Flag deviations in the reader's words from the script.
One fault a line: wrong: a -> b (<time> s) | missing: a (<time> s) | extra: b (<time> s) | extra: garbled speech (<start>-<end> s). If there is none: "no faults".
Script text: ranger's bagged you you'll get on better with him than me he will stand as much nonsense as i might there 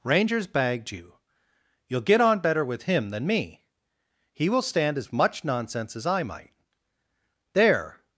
no faults